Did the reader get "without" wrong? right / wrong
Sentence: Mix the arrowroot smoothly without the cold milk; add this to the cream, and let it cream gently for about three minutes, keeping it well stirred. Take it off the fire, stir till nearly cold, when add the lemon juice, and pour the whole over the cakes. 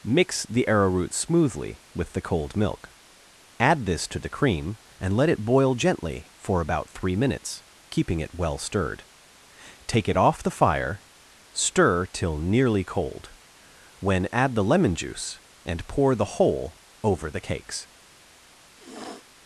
wrong